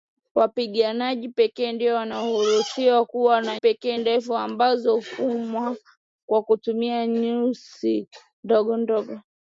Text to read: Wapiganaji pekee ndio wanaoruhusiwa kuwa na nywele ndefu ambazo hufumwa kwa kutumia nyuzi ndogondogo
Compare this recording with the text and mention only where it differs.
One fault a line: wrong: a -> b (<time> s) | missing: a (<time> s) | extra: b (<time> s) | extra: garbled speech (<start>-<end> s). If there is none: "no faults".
wrong: nywele -> pekee (3.5 s)